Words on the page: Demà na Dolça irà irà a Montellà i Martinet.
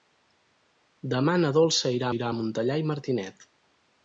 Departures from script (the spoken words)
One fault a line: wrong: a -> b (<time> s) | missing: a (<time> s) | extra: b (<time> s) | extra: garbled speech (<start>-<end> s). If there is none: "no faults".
no faults